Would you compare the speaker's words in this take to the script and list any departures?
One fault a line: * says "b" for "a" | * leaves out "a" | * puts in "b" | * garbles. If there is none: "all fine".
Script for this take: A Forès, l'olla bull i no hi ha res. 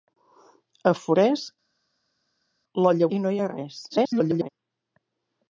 * leaves out "bull"
* garbles